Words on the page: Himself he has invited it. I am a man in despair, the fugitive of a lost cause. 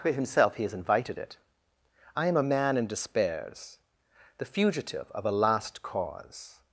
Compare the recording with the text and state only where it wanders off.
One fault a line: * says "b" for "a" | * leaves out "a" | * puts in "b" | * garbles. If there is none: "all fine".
* says "despairs" for "despair"
* says "last" for "lost"